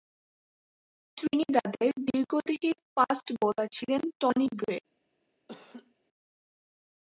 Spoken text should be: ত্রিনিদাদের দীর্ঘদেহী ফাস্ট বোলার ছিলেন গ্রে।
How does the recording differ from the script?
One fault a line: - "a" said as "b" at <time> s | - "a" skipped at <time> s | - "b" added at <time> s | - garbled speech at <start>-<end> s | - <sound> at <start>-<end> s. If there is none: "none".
- "টনি" added at 4.2 s
- laugh at 5.5-5.9 s